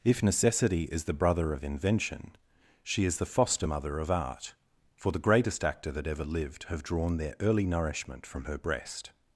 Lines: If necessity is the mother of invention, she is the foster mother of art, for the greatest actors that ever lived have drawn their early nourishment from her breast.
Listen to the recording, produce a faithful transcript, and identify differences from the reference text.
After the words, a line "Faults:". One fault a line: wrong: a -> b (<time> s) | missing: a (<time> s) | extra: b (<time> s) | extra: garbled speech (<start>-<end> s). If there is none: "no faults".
If necessity is the brother of invention, she is the foster mother of art, for the greatest actor that ever lived have drawn their early nourishment from her breast.
Faults:
wrong: mother -> brother (1.1 s)
wrong: actors -> actor (5.6 s)